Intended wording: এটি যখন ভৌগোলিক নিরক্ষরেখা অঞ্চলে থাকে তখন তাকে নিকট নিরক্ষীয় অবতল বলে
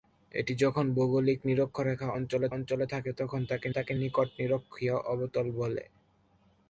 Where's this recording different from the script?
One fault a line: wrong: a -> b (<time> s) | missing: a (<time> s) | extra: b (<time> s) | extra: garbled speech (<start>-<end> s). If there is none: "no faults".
extra: অঞ্চলে (2.6 s)
extra: তাকে (3.7 s)